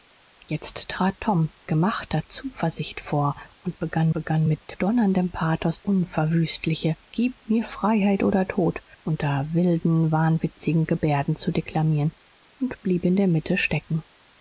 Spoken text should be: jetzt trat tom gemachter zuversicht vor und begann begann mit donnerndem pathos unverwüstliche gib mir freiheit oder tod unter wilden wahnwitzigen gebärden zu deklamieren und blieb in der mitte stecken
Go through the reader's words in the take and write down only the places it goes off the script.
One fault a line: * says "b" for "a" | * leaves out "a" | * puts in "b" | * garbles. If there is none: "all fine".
all fine